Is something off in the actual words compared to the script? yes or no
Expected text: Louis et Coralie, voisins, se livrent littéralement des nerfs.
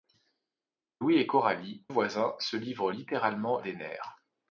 no